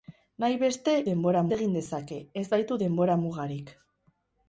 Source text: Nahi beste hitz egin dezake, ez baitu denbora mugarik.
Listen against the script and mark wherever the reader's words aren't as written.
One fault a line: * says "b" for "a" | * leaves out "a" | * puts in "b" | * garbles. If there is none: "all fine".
* says "denbora" for "hitz"